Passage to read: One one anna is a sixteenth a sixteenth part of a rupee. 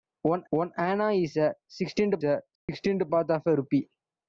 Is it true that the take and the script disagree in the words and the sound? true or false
true